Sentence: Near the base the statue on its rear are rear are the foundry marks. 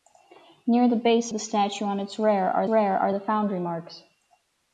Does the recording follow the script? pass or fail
pass